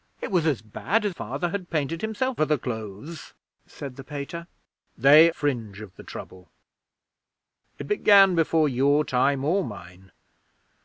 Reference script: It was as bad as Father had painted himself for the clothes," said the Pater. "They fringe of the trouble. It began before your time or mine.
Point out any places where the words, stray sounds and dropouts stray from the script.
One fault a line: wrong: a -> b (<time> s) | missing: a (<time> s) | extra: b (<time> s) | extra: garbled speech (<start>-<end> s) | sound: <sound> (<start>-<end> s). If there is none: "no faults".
no faults